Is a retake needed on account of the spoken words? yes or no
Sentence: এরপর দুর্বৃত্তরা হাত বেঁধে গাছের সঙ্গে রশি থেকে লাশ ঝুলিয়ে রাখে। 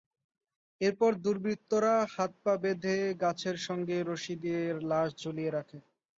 yes